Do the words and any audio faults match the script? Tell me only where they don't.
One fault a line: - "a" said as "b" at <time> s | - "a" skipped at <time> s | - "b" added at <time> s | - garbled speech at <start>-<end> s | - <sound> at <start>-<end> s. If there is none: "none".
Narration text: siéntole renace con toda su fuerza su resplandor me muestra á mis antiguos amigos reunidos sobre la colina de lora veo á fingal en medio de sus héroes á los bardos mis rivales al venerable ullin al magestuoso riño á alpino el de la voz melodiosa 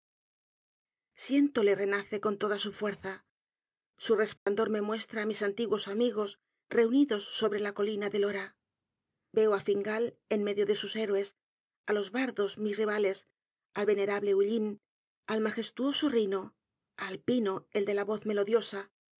- dropout at 4.4-4.5 s